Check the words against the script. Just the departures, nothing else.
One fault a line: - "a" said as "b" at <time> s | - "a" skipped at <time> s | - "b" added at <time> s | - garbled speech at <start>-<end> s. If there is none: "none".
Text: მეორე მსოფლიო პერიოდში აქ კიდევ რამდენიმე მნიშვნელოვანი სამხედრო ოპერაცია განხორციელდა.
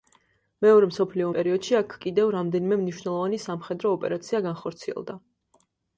none